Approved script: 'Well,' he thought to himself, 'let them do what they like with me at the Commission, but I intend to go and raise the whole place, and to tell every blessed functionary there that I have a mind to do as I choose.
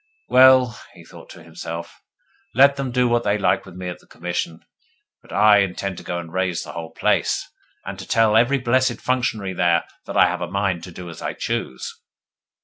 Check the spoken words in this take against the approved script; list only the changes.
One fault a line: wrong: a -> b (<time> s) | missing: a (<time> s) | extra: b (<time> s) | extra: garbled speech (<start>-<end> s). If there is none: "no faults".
no faults